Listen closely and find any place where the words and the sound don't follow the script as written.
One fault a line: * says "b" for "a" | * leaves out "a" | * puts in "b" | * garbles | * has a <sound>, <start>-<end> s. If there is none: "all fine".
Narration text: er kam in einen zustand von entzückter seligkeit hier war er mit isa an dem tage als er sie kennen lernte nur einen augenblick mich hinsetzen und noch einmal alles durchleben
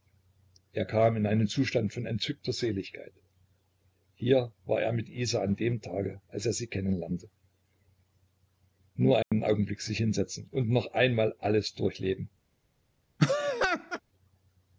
* has a dropout, 9.2-9.3 s
* says "sich" for "mich"
* has a laugh, 13.2-14.0 s